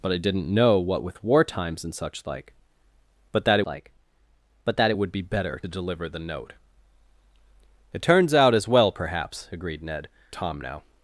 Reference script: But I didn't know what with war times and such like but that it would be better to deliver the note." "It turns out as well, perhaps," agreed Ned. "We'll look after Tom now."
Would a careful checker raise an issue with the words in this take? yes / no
yes